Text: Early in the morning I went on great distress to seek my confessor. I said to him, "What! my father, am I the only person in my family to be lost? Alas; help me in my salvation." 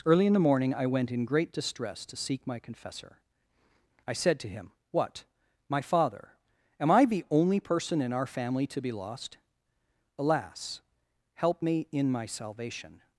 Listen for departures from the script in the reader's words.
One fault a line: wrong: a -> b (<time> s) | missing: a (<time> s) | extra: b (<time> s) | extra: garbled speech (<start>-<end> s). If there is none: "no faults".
wrong: on -> in (1.1 s)
wrong: my -> our (8.1 s)